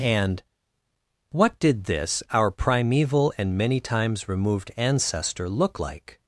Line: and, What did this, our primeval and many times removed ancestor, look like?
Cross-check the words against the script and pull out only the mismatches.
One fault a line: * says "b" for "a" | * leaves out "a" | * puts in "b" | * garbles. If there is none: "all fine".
all fine